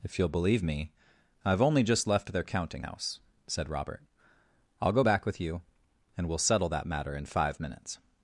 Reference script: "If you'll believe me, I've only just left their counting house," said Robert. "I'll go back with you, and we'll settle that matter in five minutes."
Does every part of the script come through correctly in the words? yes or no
yes